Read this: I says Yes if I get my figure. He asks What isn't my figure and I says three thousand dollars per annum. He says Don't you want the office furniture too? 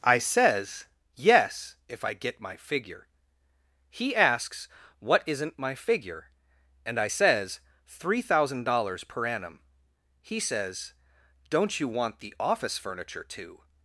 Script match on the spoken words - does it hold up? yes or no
yes